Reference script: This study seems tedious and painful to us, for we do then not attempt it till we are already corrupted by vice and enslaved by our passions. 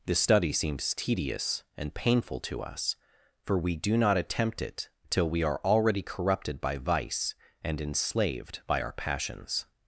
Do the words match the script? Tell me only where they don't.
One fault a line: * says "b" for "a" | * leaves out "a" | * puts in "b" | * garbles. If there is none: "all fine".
* leaves out "then"